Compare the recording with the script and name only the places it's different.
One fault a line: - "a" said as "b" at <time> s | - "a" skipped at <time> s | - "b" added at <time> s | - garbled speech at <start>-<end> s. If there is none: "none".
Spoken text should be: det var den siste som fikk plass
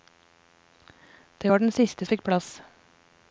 - "som" skipped at 2.0 s